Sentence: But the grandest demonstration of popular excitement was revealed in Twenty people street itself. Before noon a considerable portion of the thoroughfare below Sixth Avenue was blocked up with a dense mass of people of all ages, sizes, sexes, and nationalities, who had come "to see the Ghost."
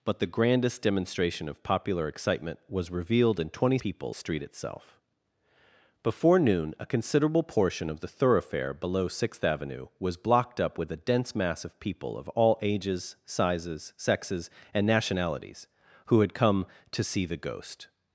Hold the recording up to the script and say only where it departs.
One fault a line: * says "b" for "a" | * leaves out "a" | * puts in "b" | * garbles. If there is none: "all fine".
all fine